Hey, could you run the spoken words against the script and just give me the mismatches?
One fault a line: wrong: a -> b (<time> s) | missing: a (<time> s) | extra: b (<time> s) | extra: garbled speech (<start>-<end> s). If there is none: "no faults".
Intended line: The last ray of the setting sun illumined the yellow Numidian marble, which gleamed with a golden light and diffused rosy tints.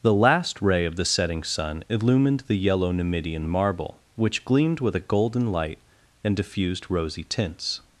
no faults